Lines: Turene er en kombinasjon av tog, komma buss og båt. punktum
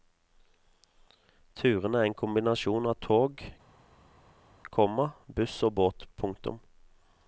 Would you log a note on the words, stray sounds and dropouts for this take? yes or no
no